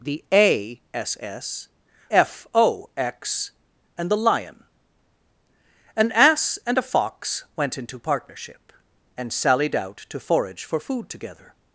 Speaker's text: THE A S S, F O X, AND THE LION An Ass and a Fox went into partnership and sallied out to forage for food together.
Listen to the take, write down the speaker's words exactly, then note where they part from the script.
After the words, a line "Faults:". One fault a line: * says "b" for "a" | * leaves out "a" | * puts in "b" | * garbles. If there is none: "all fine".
THE A S S, F O X, AND THE LION An Ass and a Fox went into partnership and sallied out to forage for food together.
Faults:
all fine